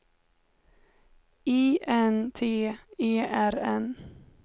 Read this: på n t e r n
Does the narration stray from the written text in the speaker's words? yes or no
yes